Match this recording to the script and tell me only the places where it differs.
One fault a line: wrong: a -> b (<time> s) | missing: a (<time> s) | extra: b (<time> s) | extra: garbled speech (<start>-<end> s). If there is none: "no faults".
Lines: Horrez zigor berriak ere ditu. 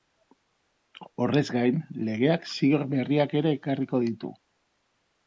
extra: gain legeak (1.6 s)
extra: ekarriko (3.6 s)